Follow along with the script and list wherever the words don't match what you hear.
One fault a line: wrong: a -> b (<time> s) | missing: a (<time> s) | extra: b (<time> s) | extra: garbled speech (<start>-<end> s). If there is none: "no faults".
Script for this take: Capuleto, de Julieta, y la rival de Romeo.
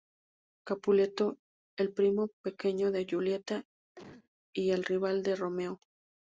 extra: el primo pequeño (1.8 s)
wrong: la -> el (4.7 s)